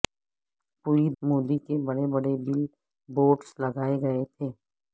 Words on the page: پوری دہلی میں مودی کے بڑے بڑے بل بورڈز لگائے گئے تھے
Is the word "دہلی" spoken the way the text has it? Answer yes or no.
no